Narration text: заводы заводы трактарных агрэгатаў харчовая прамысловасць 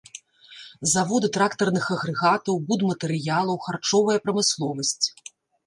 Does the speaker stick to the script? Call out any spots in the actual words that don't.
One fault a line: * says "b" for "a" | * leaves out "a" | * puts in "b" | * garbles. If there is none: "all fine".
* leaves out "заводы"
* puts in "будматэрыялаў"